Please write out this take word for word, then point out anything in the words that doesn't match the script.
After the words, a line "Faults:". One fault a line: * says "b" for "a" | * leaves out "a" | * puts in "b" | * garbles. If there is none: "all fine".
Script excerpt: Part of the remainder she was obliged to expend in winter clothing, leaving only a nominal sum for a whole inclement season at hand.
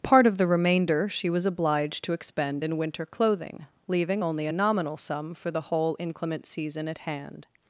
Part of the remainder she was obliged to expend in winter clothing, leaving only a nominal sum for the whole inclement season at hand.
Faults:
* says "the" for "a"